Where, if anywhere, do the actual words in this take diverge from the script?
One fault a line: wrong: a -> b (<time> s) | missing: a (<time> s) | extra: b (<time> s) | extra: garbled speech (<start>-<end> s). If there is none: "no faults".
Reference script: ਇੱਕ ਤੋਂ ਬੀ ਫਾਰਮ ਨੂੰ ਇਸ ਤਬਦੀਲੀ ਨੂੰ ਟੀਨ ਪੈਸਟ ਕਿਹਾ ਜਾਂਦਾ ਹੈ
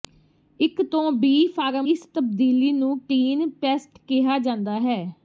missing: ਨੂੰ (1.9 s)